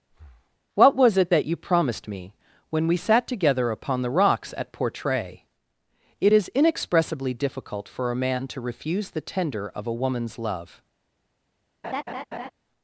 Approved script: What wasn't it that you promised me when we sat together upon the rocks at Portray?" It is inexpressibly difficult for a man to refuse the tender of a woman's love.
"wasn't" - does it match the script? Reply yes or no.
no